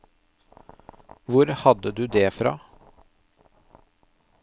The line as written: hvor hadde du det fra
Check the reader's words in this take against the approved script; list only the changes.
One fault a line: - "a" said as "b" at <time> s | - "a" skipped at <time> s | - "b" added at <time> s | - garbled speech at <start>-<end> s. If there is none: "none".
none